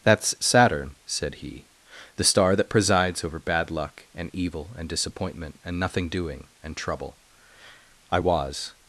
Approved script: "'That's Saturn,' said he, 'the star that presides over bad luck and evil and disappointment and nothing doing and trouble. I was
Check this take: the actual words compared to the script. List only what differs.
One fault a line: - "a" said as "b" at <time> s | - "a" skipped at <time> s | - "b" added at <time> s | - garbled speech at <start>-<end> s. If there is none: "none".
none